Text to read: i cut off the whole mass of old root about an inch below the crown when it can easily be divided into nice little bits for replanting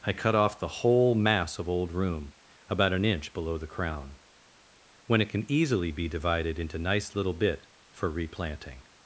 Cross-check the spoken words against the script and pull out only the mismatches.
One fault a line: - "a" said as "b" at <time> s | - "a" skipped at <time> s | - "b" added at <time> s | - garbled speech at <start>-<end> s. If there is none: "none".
- "root" said as "room" at 1.9 s
- "bits" said as "bit" at 7.3 s